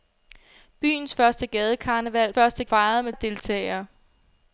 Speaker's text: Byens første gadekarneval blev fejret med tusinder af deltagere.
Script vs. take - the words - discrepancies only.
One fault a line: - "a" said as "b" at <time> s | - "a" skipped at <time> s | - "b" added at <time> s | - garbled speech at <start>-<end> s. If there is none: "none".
- "blev" said as "første" at 2.3 s
- "tusinder" skipped at 3.1 s